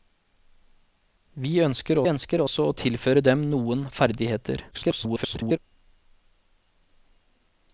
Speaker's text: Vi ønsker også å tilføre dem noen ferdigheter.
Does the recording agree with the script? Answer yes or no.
no